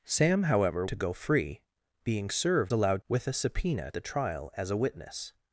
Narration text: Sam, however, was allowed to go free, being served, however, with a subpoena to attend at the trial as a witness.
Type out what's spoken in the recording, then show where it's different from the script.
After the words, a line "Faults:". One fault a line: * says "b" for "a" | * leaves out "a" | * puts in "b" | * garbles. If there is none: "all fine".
Sam, however, to go free, being served, allowed, with a subpoena the trial as a witness.
Faults:
* leaves out "was allowed"
* says "allowed" for "however"
* leaves out "to attend at"